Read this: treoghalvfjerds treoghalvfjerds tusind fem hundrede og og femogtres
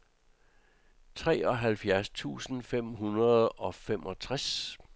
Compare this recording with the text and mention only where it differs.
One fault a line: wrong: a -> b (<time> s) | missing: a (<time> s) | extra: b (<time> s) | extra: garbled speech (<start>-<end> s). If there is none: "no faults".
missing: treoghalvfjerds (2.1 s)
missing: og (3.8 s)